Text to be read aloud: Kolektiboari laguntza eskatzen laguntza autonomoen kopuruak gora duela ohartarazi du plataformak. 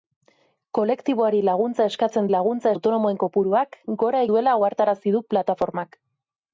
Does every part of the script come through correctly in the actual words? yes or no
yes